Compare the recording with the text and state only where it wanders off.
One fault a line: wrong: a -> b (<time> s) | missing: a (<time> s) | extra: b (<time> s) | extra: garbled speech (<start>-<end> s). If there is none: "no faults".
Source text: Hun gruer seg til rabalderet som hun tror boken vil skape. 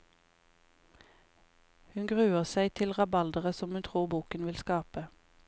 no faults